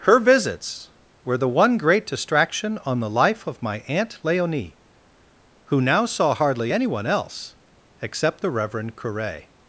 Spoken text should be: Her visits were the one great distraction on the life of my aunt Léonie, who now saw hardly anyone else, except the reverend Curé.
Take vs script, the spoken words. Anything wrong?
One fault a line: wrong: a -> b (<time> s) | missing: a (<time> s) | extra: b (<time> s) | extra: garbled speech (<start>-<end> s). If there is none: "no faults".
no faults